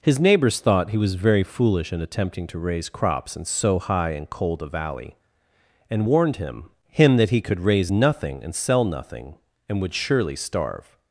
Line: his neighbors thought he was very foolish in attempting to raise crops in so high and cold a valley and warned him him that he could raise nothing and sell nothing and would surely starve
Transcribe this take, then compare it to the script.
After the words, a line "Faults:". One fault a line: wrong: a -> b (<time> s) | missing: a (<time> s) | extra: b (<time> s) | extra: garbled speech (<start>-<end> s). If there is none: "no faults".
his neighbors thought he was very foolish in attempting to raise crops in so high and cold a valley and warned him him that he could raise nothing and sell nothing and would surely starve
Faults:
no faults